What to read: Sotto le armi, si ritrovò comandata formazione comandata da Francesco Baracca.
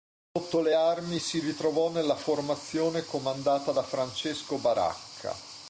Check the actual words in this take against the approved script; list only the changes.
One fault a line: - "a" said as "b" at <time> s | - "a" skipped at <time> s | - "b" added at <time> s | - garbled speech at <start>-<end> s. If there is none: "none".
- "comandata" said as "nella" at 1.9 s